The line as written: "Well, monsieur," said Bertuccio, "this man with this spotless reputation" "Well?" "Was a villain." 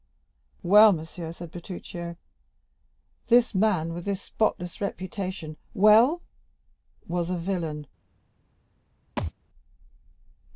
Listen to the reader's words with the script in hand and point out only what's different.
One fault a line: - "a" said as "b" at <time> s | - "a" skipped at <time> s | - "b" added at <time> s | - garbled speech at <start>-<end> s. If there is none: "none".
none